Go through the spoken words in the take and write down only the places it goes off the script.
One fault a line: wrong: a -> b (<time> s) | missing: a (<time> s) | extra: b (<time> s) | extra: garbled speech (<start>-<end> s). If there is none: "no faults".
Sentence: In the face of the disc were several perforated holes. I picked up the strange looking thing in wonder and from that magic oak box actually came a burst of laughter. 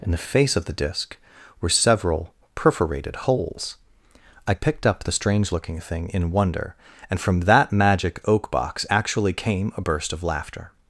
no faults